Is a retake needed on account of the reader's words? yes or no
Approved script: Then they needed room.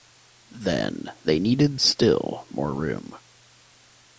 yes